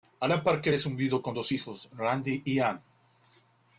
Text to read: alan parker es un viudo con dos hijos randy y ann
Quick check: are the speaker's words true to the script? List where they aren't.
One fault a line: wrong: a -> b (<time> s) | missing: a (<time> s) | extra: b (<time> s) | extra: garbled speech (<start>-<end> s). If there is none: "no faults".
no faults